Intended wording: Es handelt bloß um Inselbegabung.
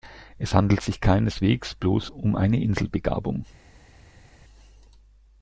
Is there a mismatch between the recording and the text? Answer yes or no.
yes